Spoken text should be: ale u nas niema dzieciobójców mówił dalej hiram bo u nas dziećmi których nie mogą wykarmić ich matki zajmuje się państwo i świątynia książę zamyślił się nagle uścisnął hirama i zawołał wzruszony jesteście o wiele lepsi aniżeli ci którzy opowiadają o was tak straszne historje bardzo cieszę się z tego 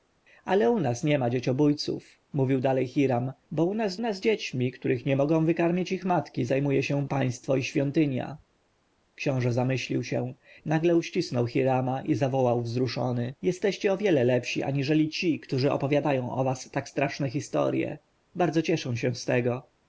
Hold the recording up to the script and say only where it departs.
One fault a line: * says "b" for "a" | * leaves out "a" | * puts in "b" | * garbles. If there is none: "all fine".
* puts in "nas"